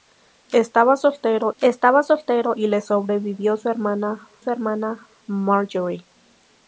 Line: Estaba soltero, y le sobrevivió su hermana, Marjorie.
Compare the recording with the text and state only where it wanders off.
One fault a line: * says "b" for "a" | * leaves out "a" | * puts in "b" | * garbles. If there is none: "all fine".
* puts in "estaba soltero"
* puts in "su hermana"